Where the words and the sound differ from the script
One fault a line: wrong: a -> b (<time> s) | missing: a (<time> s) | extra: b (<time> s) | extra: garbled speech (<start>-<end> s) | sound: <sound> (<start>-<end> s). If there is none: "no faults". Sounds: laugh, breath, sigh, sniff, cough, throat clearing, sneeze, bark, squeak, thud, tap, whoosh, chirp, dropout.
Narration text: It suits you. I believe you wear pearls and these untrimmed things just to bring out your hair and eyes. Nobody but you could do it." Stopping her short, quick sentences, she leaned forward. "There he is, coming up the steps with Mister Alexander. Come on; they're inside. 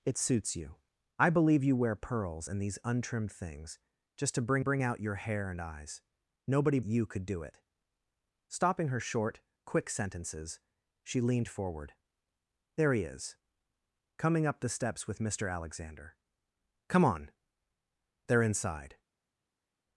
extra: bring (4.6 s)
missing: but (6.8 s)